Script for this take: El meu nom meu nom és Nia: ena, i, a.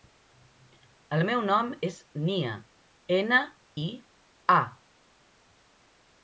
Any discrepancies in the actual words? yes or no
yes